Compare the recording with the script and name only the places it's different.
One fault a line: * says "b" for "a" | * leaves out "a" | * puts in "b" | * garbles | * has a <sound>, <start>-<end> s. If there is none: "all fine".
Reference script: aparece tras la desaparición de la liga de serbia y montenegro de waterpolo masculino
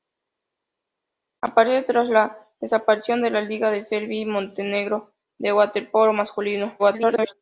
* garbles